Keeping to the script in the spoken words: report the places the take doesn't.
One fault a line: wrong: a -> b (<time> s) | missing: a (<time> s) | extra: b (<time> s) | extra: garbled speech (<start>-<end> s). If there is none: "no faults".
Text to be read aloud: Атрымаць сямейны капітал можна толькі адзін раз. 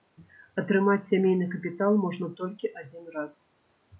no faults